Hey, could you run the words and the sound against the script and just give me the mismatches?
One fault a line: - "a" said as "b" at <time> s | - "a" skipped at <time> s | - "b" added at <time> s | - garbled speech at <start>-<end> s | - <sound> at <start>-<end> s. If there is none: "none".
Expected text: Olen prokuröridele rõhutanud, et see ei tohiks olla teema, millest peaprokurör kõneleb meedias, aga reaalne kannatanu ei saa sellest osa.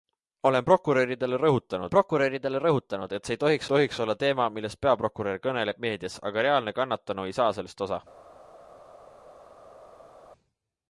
- "prokuröridele rõhutanud" added at 1.9 s
- "tohiks" added at 3.7 s